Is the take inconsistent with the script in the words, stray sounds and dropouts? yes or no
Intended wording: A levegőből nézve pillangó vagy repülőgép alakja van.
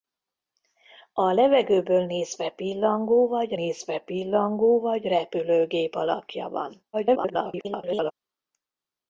yes